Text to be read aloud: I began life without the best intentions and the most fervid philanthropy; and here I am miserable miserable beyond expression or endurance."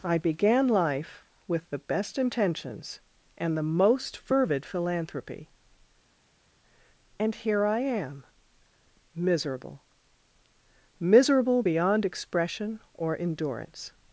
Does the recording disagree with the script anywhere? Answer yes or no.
yes